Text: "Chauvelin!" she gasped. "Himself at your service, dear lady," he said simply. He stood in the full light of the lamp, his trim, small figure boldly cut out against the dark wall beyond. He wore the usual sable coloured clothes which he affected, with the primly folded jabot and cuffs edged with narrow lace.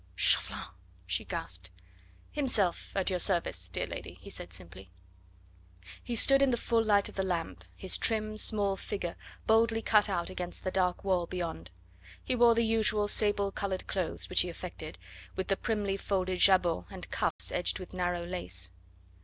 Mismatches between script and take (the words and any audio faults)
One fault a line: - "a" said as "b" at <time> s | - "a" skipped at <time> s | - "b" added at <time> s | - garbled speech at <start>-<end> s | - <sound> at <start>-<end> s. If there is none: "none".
- dropout at 17.3-17.4 s